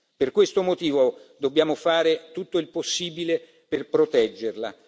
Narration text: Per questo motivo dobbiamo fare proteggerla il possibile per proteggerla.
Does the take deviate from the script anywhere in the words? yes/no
yes